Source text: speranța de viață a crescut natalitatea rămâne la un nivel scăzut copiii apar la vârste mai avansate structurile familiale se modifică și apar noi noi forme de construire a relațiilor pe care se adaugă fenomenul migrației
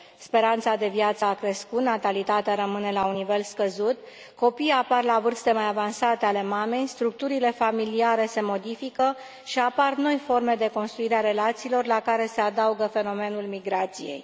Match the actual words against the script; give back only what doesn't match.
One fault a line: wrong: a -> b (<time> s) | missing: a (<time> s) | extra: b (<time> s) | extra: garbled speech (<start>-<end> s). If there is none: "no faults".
extra: ale mamei (6.3 s)
missing: noi (10.2 s)
wrong: pe -> la (11.9 s)